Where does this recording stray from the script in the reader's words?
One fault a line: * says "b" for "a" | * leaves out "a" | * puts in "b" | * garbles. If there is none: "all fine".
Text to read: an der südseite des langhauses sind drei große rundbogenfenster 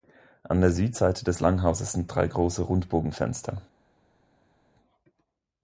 all fine